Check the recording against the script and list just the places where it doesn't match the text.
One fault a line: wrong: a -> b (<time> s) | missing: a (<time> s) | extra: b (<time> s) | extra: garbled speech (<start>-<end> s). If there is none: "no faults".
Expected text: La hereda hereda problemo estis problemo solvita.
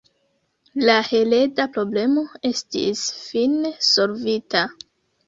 missing: hereda (1.7 s)
wrong: problemo -> fine (3.3 s)